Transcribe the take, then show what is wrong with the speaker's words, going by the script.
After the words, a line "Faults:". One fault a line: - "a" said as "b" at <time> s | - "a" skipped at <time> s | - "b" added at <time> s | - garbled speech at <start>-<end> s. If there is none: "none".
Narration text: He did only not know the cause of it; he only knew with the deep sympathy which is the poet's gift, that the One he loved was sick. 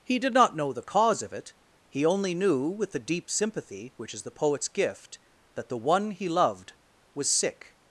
He did not know the cause of it; he only knew with the deep sympathy which is the poet's gift, that the One he loved was sick.
Faults:
- "only" skipped at 0.3 s